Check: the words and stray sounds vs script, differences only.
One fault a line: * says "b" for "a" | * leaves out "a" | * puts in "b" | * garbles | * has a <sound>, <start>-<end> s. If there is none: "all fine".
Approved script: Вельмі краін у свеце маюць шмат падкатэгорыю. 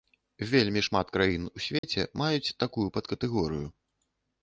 * puts in "шмат"
* has a dropout, 1.8-1.8 s
* says "такую" for "шмат"